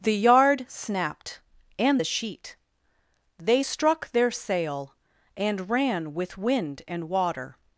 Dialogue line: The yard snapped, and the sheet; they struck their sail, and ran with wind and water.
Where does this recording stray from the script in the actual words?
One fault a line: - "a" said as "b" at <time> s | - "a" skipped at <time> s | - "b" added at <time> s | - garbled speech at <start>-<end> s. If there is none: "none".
none